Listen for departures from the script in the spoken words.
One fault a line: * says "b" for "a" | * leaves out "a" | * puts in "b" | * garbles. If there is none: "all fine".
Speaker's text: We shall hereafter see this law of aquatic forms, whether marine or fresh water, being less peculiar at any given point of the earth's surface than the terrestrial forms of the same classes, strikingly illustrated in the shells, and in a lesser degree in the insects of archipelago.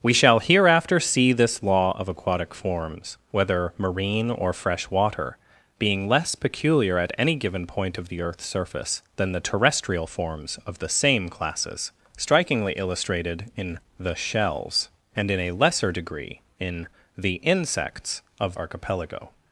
all fine